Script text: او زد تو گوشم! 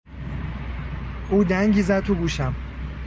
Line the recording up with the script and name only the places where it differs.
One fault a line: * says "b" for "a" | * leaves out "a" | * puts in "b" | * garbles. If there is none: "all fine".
* puts in "دنگی"